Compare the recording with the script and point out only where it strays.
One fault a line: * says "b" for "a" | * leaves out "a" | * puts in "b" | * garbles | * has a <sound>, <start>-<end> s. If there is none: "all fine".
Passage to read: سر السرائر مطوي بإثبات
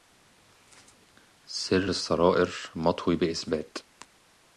all fine